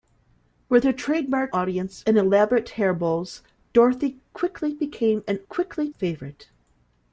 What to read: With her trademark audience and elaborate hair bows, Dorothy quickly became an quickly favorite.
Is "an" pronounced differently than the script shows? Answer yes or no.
no